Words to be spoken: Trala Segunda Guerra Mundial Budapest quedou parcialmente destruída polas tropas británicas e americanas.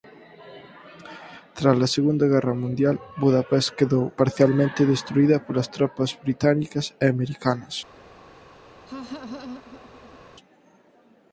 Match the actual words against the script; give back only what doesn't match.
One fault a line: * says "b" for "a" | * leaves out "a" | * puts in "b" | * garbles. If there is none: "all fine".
all fine